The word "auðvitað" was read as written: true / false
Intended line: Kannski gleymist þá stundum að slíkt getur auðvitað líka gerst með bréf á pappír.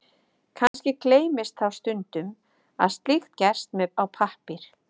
false